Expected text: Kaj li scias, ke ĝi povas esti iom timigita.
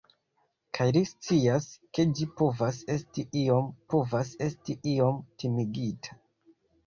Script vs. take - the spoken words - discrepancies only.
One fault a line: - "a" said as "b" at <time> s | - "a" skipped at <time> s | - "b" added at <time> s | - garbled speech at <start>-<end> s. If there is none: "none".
- "povas esti iom" added at 3.9 s